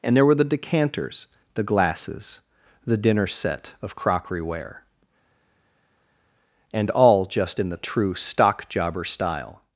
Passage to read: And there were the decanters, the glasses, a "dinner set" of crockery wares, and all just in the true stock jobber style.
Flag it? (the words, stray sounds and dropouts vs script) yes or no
yes